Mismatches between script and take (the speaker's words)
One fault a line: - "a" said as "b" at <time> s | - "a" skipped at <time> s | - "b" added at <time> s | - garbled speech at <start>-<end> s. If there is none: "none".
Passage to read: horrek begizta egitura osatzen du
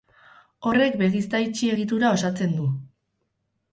- "itxi" added at 1.5 s